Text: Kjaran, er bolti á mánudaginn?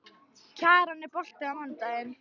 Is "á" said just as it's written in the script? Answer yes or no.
yes